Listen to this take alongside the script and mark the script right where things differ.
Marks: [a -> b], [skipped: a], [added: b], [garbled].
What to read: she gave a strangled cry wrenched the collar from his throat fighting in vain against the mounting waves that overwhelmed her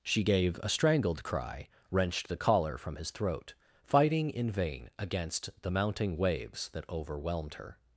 she gave a strangled cry wrenched the collar from his throat fighting in vain against the mounting waves that overwhelmed her